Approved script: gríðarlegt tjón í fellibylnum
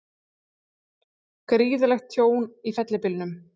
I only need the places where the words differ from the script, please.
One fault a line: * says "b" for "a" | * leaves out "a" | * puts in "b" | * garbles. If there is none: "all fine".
all fine